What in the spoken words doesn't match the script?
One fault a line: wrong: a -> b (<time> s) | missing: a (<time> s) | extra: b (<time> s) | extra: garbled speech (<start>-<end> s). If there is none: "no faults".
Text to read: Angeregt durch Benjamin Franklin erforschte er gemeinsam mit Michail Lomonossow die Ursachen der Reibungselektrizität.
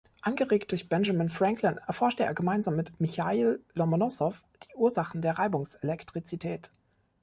no faults